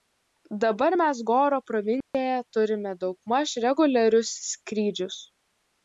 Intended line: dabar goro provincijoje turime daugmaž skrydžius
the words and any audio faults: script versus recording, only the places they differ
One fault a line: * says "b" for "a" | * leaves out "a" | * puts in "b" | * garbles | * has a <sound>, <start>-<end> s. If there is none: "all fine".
* puts in "mes"
* has a dropout, 2.0-2.1 s
* puts in "reguliarius"